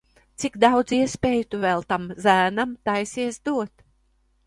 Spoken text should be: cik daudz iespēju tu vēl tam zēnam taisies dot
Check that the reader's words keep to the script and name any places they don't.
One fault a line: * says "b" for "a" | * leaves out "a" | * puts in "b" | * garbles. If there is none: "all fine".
all fine